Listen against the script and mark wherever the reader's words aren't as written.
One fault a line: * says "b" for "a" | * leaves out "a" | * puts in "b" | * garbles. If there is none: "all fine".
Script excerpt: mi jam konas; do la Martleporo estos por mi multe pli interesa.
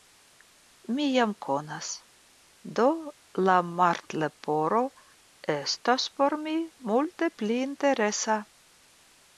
all fine